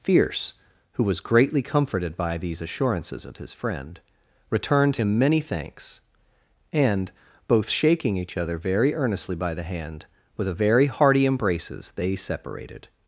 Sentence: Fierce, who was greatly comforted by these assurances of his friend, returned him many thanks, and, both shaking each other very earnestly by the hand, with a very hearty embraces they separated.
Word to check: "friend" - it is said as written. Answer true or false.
true